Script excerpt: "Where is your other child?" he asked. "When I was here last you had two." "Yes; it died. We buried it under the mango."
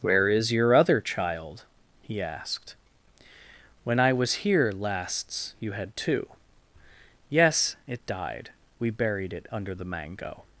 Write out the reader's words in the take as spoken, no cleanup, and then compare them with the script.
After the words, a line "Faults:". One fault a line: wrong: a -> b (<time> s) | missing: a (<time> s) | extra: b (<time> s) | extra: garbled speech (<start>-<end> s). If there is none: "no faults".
"Where is your other child?" he asked. "When I was here lasts you had two." "Yes; it died. We buried it under the mango."
Faults:
wrong: last -> lasts (4.7 s)